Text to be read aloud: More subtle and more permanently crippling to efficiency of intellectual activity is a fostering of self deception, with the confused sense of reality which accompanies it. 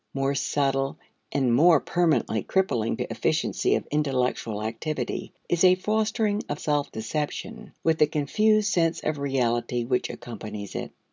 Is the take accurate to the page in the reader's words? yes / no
yes